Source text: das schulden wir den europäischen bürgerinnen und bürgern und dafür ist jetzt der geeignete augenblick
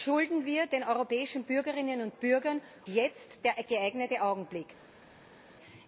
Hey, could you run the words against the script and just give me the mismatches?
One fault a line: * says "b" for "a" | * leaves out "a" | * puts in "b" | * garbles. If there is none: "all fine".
* leaves out "und dafür ist"